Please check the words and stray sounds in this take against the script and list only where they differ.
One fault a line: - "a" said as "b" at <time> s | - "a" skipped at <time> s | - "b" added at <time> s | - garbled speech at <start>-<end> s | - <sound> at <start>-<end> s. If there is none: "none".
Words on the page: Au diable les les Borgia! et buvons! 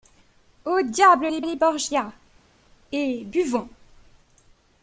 none